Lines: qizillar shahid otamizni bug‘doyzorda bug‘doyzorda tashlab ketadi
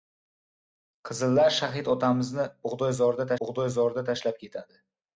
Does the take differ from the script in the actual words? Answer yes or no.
no